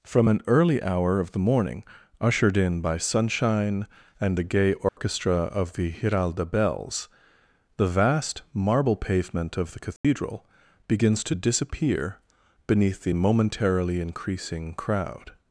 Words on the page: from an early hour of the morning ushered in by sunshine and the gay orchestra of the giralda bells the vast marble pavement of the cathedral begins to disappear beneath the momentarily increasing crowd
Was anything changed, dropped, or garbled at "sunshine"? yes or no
no